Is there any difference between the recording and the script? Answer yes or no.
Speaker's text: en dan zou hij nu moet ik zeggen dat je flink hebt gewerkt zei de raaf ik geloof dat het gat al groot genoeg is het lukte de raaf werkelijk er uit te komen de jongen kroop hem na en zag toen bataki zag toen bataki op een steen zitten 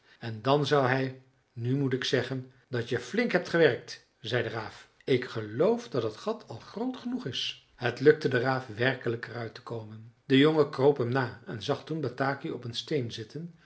yes